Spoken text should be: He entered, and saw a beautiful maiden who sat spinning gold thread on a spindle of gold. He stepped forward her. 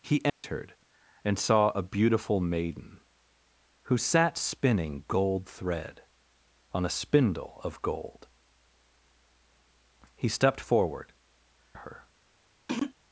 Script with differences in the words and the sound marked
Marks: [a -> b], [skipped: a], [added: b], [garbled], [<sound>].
He entered, [dropout] and saw a beautiful maiden who sat spinning gold thread on a spindle of gold. He stepped forward her. [throat clearing]